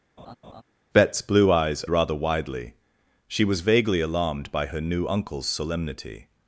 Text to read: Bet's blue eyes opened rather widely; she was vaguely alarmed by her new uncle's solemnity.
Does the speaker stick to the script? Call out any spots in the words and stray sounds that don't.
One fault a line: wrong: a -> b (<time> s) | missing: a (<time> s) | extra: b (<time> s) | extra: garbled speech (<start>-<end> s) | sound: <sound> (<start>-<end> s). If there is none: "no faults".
sound: laugh (0.2-0.6 s)
missing: opened (1.9 s)